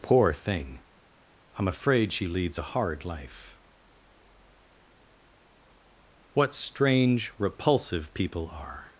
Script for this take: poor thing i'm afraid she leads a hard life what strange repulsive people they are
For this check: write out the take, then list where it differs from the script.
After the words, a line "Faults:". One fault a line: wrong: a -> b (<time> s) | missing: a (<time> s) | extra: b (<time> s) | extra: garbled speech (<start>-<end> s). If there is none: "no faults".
poor thing i'm afraid she leads a hard life what strange repulsive people are
Faults:
missing: they (8.5 s)